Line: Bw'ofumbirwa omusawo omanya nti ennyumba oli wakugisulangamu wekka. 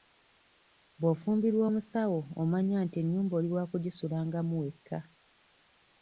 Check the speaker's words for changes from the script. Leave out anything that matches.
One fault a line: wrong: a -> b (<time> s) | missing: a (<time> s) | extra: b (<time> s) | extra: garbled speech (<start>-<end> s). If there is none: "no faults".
no faults